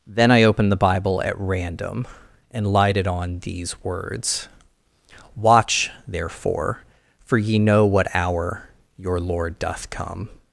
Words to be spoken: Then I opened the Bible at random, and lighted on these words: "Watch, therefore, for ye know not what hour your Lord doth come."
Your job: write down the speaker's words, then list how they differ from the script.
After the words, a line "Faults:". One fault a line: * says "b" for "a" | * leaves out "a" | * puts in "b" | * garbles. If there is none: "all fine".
Then I opened the Bible at random, and lighted on these words: "Watch, therefore, for ye know what hour your Lord doth come."
Faults:
* leaves out "not"